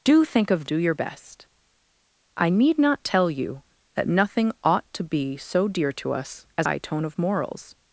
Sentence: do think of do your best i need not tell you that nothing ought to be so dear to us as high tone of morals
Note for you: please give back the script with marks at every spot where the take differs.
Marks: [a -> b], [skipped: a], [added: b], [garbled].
do think of do your best i need not tell you that nothing ought to be so dear to us as high tone of morals